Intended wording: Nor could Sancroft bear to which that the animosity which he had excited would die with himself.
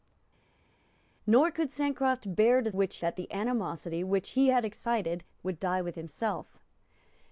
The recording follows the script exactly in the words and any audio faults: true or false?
true